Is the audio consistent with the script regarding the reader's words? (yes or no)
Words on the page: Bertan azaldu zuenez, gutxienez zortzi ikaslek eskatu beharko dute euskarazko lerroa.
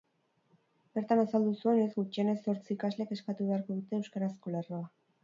yes